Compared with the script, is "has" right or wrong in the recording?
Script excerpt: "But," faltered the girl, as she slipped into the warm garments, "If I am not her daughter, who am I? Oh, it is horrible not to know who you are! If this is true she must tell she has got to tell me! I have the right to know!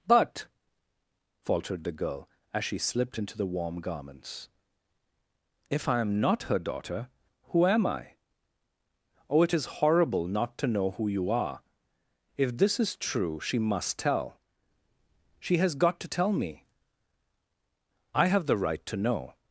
right